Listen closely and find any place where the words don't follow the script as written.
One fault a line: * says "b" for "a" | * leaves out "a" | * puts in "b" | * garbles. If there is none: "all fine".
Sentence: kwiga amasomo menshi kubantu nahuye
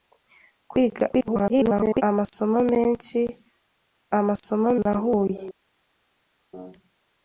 * garbles
* says "amasomo" for "kubantu"